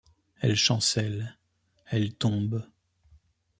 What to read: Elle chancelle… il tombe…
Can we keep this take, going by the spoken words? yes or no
no